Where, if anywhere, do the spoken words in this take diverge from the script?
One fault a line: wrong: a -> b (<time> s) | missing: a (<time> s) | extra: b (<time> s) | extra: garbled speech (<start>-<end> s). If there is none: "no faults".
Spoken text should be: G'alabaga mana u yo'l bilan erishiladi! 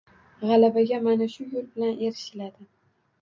wrong: u -> shu (1.3 s)